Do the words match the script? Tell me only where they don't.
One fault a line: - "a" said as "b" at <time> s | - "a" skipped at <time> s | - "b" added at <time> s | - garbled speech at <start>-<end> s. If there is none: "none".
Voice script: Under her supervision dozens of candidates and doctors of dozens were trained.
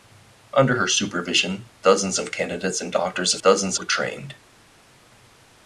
none